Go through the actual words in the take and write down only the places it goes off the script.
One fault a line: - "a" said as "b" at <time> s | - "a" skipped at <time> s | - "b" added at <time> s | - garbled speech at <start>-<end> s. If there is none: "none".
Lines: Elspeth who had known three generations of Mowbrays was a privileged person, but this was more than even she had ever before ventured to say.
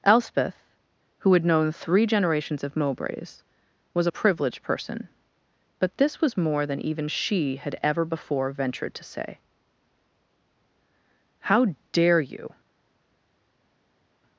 - "How dare you" added at 11.4 s